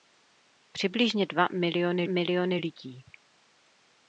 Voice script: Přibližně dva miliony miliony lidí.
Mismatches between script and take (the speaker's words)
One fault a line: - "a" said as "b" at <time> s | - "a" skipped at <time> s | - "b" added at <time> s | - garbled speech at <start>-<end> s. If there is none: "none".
none